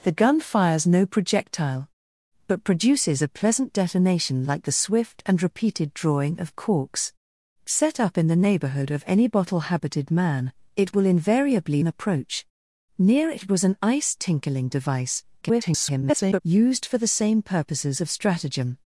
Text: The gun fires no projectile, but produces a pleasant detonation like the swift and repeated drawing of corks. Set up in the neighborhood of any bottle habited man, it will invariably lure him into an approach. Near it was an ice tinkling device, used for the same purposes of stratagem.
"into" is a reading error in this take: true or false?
true